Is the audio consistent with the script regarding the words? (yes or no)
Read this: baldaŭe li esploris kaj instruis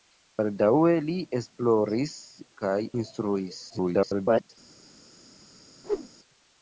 no